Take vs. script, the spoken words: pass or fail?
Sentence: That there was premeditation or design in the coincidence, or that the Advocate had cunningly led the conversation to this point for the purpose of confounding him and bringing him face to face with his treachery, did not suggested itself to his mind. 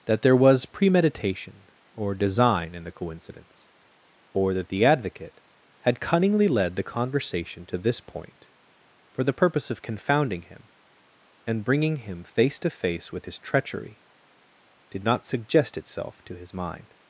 fail